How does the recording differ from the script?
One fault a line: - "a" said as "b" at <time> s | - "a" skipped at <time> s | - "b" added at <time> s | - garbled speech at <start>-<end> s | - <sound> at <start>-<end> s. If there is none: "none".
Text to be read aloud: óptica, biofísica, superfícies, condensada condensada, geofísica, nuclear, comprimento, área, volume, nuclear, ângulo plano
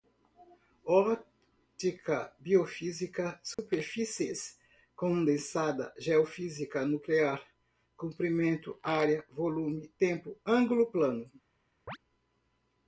- dropout at 3.5-3.6 s
- "condensada" skipped at 5.9 s
- "nuclear" said as "tempo" at 10.0 s
- chirp at 11.9-12.0 s